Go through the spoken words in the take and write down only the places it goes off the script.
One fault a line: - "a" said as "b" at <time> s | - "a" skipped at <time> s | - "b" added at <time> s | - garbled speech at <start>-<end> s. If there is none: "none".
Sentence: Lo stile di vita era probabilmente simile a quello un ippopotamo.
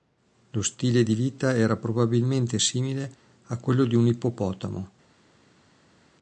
- "di" added at 3.8 s